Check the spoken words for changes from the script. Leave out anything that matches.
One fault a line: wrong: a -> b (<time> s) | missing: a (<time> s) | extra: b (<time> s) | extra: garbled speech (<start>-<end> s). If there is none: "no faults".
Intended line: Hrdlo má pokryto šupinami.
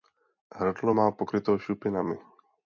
no faults